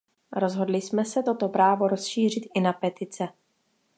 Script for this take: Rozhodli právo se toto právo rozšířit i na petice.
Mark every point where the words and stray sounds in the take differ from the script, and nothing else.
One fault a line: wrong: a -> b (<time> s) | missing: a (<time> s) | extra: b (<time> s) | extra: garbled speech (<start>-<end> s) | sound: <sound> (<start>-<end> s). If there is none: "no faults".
wrong: právo -> jsme (0.8 s)